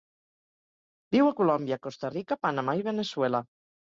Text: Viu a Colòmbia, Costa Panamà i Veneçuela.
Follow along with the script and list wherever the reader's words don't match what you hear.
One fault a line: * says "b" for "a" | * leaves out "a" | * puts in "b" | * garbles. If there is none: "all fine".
* puts in "Rica"